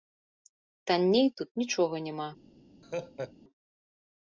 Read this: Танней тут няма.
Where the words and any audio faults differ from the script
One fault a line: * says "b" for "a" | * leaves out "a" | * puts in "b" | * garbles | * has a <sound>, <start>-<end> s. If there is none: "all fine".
* puts in "нічога"
* has a laugh, 2.8-3.3 s